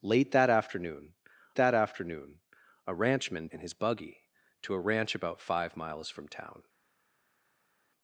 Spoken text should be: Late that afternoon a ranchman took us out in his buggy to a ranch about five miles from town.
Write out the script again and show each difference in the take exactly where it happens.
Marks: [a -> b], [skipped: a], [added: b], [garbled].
Late that afternoon [added: that afternoon] a ranchman [skipped: took us out] in his buggy to a ranch about five miles from town.